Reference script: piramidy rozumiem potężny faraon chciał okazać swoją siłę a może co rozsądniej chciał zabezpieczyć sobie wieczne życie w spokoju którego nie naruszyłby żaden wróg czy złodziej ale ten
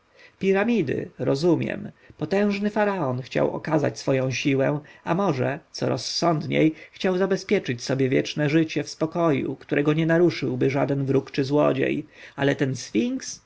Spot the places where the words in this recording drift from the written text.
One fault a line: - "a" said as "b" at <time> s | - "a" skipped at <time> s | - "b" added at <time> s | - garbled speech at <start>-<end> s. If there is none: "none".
none